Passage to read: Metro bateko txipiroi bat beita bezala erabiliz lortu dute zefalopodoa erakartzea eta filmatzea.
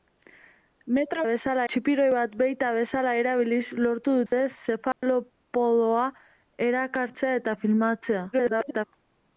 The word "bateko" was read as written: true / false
false